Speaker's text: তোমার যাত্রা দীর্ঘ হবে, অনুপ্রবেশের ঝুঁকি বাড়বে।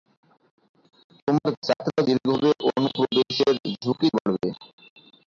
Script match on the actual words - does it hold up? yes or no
yes